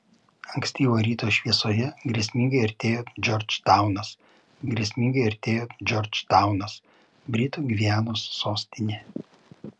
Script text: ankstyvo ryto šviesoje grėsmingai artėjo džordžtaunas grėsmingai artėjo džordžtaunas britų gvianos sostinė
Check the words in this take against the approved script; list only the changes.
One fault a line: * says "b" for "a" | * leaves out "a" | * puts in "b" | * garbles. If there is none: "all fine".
all fine